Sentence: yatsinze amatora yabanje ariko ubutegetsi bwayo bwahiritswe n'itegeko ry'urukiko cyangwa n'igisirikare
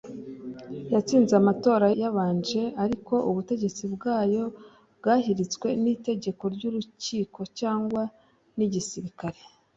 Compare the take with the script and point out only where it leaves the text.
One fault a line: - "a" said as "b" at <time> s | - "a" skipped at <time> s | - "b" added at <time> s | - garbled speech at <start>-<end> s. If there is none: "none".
none